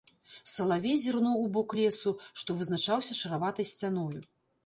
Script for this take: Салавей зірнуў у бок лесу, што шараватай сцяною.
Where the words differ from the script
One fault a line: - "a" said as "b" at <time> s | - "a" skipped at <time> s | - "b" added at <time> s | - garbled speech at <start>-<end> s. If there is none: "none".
- "вызначаўся" added at 2.6 s